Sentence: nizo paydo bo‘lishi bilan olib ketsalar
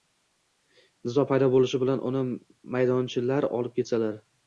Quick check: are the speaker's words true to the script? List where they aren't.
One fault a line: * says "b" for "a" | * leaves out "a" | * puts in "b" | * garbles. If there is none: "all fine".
* puts in "uni maydonchalar"